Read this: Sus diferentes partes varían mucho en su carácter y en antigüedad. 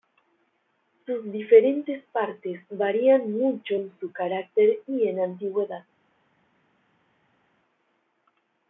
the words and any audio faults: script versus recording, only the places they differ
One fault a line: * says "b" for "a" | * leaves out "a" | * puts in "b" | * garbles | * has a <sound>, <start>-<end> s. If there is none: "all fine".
all fine